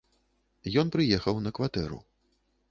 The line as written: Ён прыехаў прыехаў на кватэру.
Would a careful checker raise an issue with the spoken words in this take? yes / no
yes